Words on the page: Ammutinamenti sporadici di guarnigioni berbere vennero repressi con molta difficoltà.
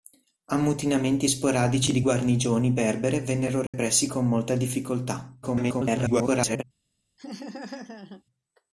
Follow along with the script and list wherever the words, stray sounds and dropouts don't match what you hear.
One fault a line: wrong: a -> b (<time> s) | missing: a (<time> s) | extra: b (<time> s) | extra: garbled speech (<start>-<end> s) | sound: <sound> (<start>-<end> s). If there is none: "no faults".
sound: dropout (3.7-3.7 s)
extra: garbled speech (5.4-6.6 s)
sound: laugh (7.2-8.2 s)